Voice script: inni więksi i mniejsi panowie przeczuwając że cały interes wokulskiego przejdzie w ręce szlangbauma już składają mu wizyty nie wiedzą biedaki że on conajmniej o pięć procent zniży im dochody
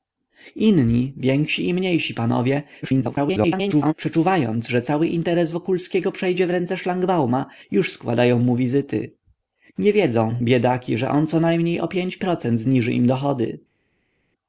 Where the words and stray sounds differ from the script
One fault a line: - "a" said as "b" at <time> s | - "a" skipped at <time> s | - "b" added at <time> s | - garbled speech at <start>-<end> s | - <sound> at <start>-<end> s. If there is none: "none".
- garbled speech at 2.8-3.9 s